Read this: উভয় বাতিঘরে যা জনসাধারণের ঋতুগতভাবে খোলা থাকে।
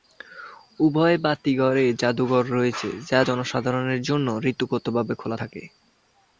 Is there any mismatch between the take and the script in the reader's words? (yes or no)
yes